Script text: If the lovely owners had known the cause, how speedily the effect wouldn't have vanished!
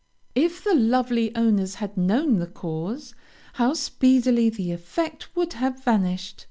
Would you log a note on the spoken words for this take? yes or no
yes